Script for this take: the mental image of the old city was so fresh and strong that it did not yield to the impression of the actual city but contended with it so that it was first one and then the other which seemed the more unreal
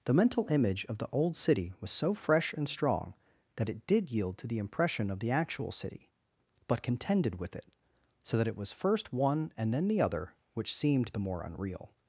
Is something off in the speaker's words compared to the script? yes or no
yes